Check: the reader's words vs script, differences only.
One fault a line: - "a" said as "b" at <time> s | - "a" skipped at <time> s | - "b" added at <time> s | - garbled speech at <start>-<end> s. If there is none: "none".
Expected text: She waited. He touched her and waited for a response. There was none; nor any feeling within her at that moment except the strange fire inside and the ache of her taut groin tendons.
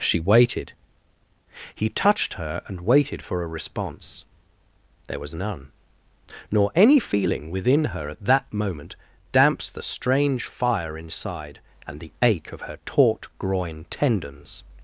- "except" said as "damps" at 9.3 s